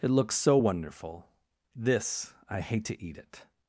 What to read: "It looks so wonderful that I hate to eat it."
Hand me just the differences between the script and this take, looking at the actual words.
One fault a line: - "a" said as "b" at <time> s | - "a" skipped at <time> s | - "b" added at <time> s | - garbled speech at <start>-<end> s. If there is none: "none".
- "that" said as "this" at 1.7 s